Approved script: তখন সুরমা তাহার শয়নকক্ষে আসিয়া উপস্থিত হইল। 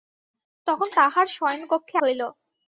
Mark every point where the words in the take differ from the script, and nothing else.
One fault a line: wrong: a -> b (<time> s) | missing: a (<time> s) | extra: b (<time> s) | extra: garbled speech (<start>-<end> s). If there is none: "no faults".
missing: সুরমা (0.9 s)
missing: আসিয়া উপস্থিত (2.0 s)